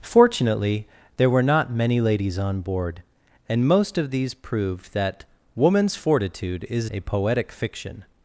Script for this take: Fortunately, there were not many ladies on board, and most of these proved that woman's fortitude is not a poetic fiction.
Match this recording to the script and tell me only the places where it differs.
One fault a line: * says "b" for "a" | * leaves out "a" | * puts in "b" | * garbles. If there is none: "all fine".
* leaves out "not"